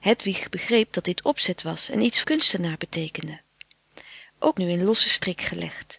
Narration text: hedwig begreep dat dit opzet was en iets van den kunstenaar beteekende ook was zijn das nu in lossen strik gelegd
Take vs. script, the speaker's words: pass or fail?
fail